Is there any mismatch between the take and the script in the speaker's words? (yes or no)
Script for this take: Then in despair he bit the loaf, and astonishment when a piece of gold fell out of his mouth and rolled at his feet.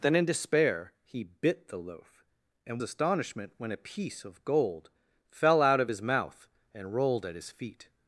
no